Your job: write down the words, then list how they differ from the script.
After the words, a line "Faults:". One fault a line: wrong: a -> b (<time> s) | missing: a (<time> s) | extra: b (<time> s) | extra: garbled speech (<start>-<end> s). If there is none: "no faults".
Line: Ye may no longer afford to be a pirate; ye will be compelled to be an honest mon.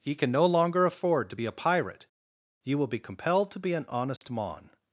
Ye can no longer afford to be a pirate; ye will be compelled to be an honest mon.
Faults:
wrong: may -> can (0.1 s)